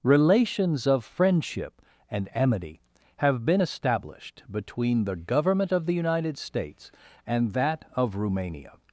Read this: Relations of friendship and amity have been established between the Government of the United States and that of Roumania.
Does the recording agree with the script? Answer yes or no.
yes